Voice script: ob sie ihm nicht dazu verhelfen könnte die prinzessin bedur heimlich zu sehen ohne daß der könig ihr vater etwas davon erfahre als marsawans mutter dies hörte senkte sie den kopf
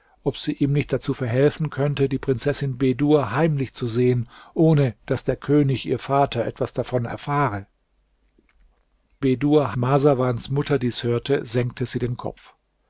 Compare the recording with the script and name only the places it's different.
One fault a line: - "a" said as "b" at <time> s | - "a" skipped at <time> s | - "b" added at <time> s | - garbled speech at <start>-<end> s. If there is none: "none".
- "als" said as "bedur" at 9.2 s